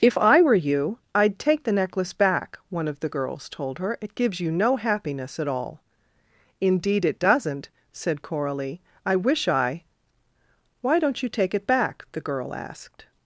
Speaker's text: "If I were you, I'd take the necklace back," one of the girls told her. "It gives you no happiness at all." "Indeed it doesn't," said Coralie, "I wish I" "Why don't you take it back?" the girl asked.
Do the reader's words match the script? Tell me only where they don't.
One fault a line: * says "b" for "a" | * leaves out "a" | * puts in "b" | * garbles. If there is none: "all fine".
all fine